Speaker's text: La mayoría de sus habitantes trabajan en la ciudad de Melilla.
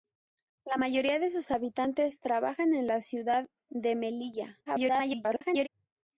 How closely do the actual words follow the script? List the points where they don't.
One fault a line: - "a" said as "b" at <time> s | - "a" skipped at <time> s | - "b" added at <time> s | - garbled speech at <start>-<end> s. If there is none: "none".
- garbled speech at 4.7-5.7 s